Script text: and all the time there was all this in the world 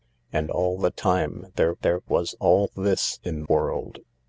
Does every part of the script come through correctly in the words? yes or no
no